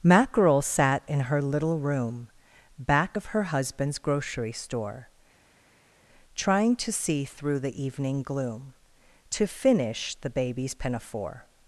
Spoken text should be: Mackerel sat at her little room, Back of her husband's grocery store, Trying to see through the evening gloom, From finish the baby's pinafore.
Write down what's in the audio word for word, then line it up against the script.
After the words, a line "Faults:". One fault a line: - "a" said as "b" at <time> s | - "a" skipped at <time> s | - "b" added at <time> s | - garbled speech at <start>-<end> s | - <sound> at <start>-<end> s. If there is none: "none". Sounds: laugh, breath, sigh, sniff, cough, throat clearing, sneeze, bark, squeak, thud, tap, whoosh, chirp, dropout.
Mackerel sat in her little room, Back of her husband's grocery store, Trying to see through the evening gloom, To finish the baby's pinafore.
Faults:
- "at" said as "in" at 1.1 s
- "From" said as "To" at 9.3 s